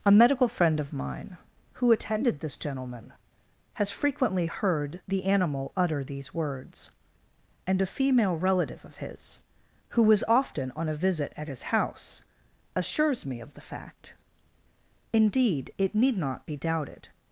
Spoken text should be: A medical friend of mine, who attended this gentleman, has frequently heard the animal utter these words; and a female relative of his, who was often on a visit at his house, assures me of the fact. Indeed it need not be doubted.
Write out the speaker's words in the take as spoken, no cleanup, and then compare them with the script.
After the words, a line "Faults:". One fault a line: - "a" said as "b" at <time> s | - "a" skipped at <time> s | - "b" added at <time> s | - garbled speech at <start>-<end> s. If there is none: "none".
A medical friend of mine, who attended this gentleman, has frequently heard the animal utter these words; and a female relative of his, who was often on a visit at his house, assures me of the fact. Indeed it need not be doubted.
Faults:
none